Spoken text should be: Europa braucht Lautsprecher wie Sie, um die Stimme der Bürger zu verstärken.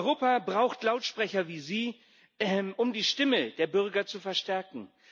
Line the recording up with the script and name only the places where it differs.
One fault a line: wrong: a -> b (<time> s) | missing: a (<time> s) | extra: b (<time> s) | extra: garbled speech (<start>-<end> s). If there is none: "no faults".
no faults